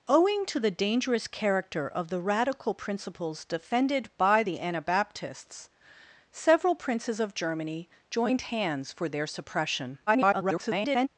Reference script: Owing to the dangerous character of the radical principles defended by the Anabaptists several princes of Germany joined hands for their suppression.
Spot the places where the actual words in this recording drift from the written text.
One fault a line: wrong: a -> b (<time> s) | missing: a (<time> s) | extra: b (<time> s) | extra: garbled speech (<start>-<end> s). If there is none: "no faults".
extra: garbled speech (10.1-11.1 s)